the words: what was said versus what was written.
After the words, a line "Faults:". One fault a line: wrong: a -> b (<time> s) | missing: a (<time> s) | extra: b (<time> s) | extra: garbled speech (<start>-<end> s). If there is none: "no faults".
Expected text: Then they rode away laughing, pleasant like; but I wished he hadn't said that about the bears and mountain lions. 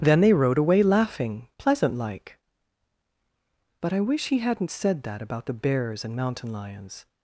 Then they rode away laughing, pleasant like; but I wish he hadn't said that about the bears and mountain lions.
Faults:
wrong: wished -> wish (4.0 s)